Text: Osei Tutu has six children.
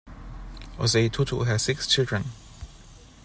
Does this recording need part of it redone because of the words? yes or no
no